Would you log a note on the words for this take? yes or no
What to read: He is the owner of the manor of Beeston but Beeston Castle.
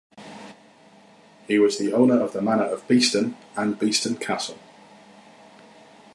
yes